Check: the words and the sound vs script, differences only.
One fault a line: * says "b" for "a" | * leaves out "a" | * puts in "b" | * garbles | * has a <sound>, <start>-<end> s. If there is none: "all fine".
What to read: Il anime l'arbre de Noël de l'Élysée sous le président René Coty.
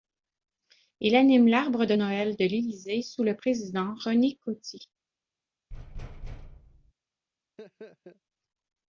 * has a thud, 5.7-6.9 s
* has a laugh, 7.6-8.2 s